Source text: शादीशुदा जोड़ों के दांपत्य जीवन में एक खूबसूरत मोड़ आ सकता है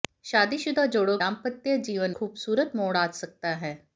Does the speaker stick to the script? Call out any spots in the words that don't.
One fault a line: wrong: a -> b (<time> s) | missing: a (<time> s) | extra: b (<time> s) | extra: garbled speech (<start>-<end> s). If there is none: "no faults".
missing: के (1.2 s)
missing: में एक (2.1 s)